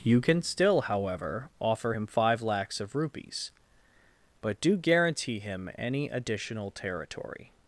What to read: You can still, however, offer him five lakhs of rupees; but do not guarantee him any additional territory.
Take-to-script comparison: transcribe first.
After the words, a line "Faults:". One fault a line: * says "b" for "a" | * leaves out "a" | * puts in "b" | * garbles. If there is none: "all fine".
You can still, however, offer him five lakhs of rupees; but do guarantee him any additional territory.
Faults:
* leaves out "not"